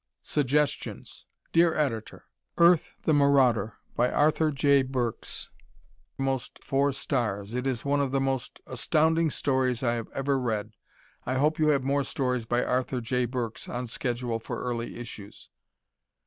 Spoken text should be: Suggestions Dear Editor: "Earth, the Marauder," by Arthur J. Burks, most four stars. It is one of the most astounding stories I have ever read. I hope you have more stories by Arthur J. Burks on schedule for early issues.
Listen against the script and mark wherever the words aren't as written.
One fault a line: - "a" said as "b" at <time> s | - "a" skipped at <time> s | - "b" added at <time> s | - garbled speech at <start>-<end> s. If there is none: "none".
none